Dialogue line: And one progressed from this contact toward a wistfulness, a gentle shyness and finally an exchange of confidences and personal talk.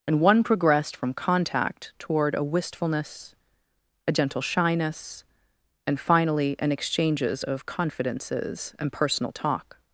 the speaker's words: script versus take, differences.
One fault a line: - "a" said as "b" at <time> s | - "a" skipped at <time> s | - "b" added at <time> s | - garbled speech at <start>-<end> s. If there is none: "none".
- "this" skipped at 1.1 s
- "exchange" said as "exchanges" at 6.7 s